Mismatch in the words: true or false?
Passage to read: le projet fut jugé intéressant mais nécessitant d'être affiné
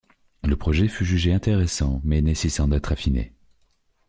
false